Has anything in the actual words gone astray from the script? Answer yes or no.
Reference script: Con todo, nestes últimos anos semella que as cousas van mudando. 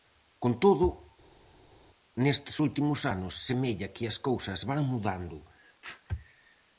no